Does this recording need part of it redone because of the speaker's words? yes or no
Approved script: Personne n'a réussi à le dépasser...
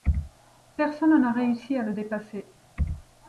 no